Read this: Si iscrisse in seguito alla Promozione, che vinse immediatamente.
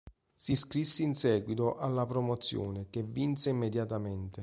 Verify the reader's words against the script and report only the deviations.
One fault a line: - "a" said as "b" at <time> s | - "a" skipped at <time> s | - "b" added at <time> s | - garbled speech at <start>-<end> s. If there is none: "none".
none